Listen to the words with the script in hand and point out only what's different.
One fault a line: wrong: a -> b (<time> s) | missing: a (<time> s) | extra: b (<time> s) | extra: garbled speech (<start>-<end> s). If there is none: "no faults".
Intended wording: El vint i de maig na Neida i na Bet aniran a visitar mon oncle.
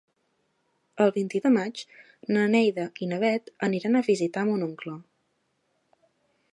no faults